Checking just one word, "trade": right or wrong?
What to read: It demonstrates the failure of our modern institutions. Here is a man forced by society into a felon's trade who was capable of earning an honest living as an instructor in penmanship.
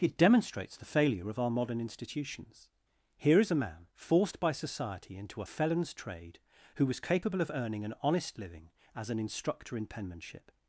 right